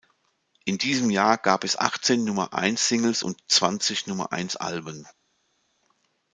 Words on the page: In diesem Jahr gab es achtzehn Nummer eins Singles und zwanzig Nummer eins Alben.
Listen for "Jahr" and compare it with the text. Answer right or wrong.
right